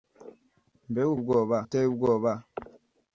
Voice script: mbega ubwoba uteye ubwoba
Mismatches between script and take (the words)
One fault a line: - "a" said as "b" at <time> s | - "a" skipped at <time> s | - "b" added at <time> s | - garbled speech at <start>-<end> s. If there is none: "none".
none